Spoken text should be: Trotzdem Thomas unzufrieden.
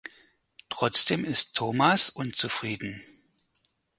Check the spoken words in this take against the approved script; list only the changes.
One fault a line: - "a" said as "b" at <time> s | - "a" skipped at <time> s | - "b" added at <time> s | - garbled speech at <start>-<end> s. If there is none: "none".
- "ist" added at 1.2 s